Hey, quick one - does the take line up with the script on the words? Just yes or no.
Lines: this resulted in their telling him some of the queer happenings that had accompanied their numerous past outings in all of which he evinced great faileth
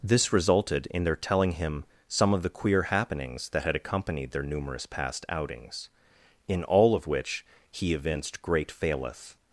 yes